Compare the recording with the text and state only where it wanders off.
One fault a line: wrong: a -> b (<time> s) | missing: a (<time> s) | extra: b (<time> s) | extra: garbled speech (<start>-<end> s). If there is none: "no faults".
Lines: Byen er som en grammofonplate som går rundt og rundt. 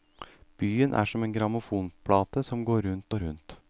no faults